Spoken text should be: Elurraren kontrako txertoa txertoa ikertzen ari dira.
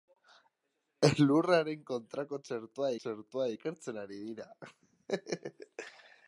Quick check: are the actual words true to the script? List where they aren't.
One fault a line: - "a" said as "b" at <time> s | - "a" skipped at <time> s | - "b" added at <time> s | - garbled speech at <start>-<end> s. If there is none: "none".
none